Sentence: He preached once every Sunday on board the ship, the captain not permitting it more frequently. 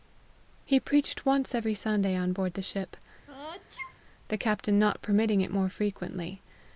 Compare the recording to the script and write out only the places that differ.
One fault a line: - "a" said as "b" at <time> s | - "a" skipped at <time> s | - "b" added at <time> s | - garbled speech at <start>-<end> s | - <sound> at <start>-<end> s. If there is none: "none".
- sneeze at 3.3-4.0 s